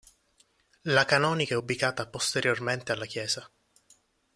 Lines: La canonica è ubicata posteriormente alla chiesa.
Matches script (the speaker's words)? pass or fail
pass